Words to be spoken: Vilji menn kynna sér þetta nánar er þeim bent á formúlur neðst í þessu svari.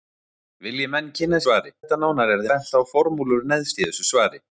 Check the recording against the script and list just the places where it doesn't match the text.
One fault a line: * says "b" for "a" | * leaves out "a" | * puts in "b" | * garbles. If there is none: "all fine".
* says "svari" for "sér"
* leaves out "þeim"